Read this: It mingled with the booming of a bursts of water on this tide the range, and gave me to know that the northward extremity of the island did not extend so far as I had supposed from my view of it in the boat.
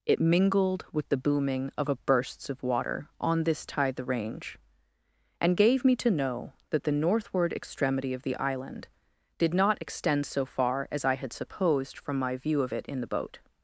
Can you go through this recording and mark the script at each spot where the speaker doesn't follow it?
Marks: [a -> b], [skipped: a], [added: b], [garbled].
It mingled with the booming of a bursts of water on this tide the range, and gave me to know that the northward extremity of the island did not extend so far as I had supposed from my view of it in the boat.